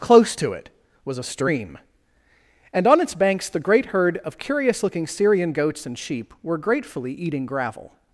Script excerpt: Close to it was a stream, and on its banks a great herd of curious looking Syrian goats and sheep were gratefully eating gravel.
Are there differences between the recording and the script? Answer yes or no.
yes